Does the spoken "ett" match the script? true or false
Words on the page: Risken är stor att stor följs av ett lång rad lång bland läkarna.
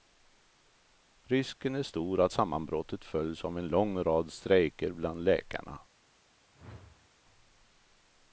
false